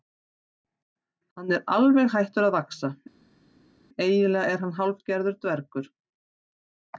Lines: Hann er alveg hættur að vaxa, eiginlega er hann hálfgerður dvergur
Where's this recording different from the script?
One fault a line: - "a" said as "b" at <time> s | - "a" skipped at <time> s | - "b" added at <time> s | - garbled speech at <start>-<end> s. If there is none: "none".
none